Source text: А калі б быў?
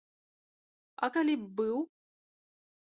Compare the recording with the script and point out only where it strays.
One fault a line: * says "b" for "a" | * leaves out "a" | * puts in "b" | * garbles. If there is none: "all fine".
all fine